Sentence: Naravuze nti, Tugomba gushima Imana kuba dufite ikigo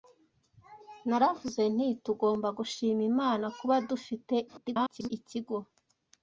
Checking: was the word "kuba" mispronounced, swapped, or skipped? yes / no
no